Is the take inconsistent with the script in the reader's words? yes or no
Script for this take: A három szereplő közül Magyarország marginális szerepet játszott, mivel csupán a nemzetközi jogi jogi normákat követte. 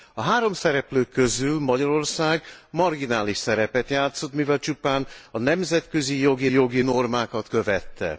no